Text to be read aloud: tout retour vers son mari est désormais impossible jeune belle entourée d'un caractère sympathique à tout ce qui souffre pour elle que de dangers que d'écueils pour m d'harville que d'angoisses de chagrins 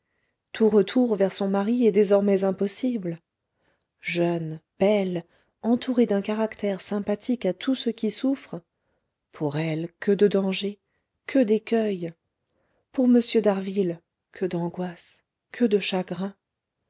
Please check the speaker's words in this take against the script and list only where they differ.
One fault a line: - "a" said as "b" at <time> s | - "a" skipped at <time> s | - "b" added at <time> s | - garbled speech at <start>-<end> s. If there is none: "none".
- "que" added at 15.5 s